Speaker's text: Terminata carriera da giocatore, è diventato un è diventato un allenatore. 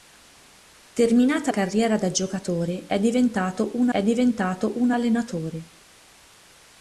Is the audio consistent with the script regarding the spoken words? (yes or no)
yes